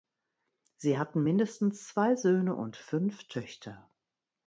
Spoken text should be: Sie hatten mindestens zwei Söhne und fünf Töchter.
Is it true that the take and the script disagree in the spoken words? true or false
false